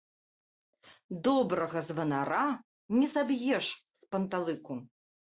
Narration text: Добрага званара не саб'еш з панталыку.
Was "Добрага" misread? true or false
false